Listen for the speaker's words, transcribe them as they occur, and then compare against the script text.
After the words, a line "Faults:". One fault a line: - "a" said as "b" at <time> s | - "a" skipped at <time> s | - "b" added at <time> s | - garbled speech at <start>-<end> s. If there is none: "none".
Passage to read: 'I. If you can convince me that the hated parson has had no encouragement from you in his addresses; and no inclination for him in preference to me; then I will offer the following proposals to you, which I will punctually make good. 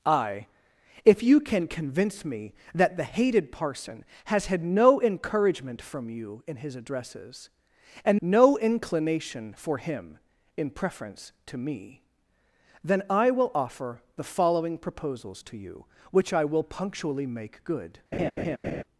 'I. If you can convince me that the hated parson has had no encouragement from you in his addresses; and no inclination for him in preference to me; then I will offer the following proposals to you, which I will punctually make good.
Faults:
none